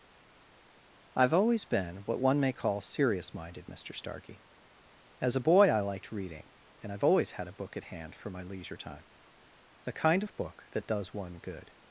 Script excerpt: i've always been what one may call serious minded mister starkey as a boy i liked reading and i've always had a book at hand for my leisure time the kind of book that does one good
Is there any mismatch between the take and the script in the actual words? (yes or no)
no